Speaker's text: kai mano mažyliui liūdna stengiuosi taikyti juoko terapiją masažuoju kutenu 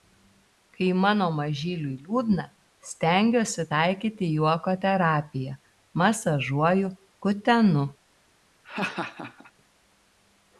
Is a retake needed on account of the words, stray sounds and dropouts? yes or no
yes